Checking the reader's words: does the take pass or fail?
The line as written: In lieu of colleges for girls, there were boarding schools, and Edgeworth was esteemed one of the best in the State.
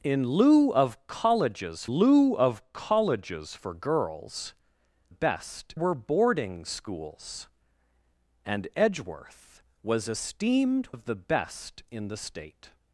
fail